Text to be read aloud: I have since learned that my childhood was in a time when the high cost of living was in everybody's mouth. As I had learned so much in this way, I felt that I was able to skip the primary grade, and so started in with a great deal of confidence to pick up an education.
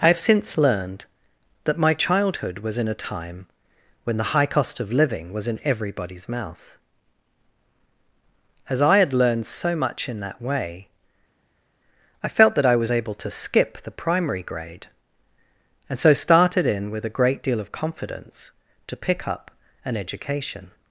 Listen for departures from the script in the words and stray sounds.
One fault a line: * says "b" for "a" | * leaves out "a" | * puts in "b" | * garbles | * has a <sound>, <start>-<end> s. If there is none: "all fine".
* says "that" for "this"